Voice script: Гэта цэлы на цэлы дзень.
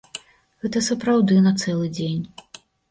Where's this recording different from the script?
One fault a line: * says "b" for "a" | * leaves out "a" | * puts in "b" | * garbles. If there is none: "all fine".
* says "сапраўды" for "цэлы"